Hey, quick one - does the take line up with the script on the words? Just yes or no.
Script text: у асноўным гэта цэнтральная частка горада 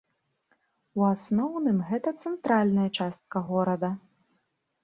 yes